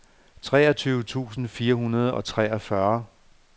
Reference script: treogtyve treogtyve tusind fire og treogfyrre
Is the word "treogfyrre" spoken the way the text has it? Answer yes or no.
yes